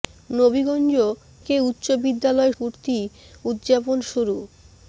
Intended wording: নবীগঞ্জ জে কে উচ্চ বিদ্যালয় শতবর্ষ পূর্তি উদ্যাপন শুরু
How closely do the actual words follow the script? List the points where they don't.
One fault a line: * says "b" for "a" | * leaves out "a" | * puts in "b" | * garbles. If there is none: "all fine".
* leaves out "জে"
* leaves out "শতবর্ষ"